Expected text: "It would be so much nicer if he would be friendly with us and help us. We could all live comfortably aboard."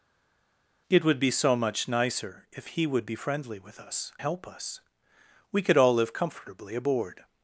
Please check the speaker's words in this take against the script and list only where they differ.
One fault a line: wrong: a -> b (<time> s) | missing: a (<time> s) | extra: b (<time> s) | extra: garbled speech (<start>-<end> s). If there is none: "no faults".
missing: and (4.1 s)